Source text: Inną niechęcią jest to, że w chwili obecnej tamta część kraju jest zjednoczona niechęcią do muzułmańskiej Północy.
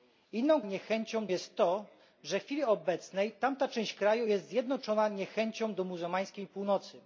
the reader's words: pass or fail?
pass